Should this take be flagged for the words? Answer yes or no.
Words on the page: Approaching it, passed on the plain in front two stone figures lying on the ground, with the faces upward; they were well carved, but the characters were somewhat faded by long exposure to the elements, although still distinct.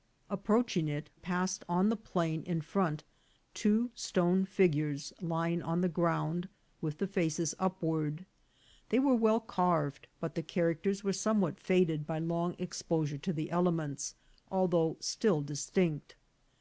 no